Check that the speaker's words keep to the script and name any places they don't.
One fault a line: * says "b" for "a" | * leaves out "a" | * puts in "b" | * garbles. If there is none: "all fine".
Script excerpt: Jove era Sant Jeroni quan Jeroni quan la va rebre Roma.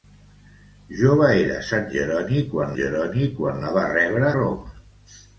all fine